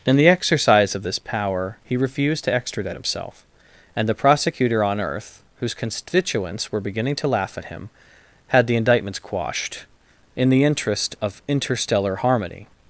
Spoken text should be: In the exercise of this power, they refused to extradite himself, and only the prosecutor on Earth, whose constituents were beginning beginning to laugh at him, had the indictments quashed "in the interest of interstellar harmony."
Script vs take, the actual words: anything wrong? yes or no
yes